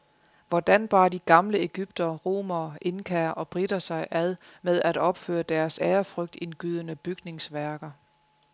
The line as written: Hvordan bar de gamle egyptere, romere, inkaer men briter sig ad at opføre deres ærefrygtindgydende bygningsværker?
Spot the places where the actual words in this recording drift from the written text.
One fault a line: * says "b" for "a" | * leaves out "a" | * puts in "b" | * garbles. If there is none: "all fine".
* says "og" for "men"
* puts in "med"